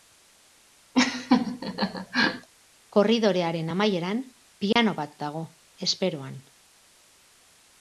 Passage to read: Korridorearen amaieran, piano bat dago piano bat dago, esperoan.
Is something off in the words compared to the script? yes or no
yes